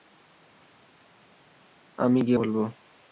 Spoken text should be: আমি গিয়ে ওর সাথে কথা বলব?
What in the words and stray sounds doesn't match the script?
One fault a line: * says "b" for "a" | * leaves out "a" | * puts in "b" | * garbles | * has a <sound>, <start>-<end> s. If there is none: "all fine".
* leaves out "ওর সাথে কথা"